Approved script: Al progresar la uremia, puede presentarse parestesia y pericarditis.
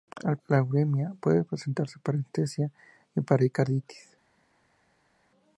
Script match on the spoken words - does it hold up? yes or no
no